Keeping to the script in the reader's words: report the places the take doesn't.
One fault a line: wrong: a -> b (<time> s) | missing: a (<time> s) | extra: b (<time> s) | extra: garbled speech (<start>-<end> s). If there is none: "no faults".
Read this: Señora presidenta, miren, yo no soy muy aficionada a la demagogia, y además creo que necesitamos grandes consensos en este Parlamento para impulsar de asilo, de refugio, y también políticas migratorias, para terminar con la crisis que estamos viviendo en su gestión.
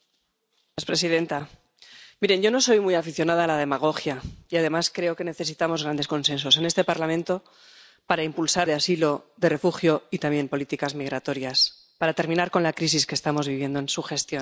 no faults